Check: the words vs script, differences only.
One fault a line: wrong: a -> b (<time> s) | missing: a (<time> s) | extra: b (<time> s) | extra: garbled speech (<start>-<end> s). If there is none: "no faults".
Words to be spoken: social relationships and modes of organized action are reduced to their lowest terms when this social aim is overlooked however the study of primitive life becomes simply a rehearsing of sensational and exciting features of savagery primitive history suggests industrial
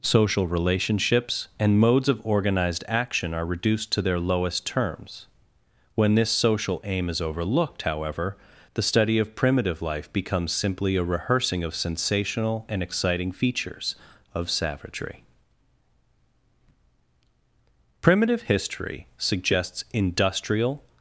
no faults